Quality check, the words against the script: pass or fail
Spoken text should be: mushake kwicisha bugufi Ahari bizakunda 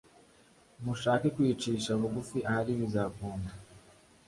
pass